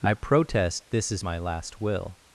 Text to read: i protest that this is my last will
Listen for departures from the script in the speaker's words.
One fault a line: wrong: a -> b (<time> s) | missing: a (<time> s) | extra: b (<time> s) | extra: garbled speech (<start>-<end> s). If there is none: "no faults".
missing: that (0.8 s)